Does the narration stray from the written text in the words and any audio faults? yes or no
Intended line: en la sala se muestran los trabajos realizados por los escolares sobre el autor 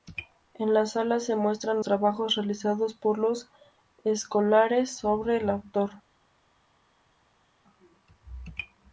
yes